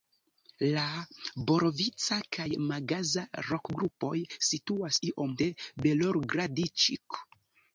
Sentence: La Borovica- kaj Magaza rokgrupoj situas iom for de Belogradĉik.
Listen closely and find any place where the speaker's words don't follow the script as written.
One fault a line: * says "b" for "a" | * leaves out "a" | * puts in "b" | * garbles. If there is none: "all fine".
* leaves out "for"